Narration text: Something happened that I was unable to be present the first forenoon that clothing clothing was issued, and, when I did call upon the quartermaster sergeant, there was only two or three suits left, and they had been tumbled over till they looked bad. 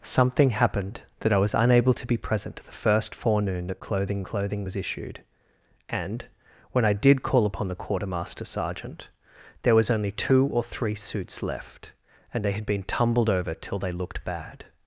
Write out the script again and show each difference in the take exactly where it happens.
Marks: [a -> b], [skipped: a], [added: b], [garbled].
Something happened that I was unable to be present the first forenoon that clothing clothing was issued, and, when I did call upon the quartermaster sergeant, there was only two or three suits left, and they had been tumbled over till they looked bad.